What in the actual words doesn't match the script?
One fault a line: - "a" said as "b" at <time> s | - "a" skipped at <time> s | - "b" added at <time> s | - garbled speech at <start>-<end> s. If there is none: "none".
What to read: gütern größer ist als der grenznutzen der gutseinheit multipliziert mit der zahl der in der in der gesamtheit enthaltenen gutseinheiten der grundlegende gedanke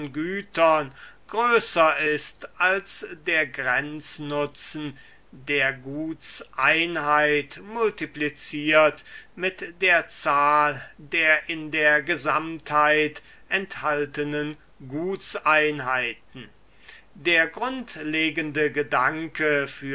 - "in der" skipped at 12.0 s